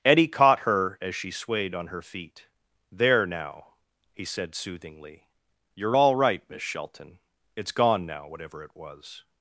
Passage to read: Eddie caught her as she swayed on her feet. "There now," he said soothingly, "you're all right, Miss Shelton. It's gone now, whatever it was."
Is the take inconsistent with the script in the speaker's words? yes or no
no